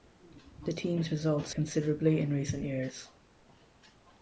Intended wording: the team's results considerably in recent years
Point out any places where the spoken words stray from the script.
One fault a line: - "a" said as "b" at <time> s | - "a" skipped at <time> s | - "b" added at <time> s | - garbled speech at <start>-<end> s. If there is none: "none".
none